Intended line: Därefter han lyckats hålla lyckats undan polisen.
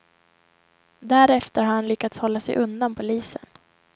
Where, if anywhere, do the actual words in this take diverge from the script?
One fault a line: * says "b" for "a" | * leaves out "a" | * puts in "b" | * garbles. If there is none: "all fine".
* puts in "har"
* says "sig" for "lyckats"